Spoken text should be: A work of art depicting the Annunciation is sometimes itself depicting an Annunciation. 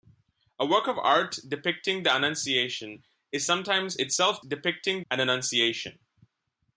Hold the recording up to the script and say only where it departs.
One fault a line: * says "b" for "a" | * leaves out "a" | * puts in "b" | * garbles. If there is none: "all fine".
all fine